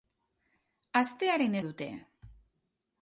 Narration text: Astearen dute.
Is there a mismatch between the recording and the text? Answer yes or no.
no